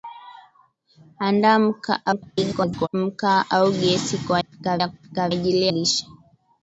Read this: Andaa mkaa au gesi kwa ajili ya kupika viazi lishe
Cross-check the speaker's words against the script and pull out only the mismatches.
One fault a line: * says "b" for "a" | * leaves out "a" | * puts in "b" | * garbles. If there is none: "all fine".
* garbles
* says "kupika" for "ajili"
* says "ajili" for "viazi"